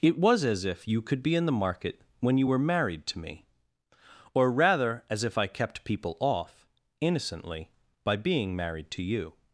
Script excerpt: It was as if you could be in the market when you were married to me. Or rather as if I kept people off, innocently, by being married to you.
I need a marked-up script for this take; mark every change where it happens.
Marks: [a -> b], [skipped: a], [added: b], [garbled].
It was as if you could be in the market when you were married to me. Or rather as if I kept people off, innocently, by being married to you.